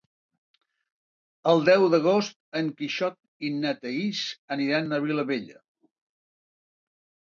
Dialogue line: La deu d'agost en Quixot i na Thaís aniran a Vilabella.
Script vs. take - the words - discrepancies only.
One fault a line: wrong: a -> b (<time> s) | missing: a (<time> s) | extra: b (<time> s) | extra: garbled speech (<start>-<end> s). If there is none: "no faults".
wrong: La -> El (1.5 s)